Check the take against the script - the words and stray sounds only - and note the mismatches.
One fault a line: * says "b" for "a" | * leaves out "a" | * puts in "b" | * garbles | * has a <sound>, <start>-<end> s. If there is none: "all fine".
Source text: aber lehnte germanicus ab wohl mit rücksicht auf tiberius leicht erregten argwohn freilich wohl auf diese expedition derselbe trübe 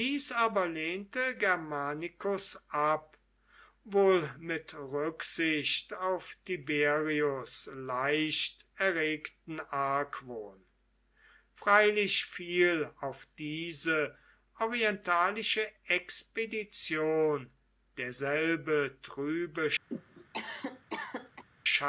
* says "fiel" for "wohl"
* puts in "orientalische"
* has a cough, 19.9-21.4 s